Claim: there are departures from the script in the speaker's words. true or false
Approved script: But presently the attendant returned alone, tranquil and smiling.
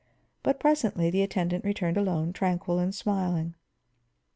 false